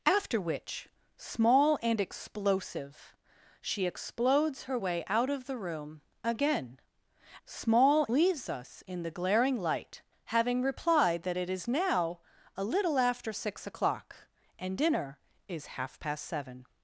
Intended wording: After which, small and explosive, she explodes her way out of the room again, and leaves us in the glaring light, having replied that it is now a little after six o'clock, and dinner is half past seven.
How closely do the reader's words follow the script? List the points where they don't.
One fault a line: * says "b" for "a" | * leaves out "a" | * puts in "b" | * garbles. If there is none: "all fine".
* says "small" for "and"